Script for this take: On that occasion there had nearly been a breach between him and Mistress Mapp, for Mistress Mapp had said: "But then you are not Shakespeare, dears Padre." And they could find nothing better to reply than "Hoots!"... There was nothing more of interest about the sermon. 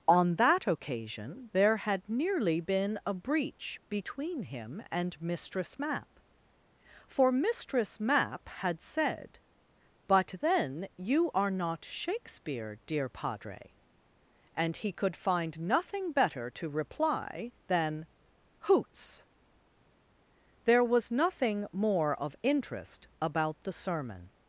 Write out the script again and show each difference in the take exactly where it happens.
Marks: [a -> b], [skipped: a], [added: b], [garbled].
On that occasion there had nearly been a breach between him and Mistress Mapp, for Mistress Mapp had said: "But then you are not Shakespeare, [dears -> dear] Padre." And [they -> he] could find nothing better to reply than "Hoots!"... There was nothing more of interest about the sermon.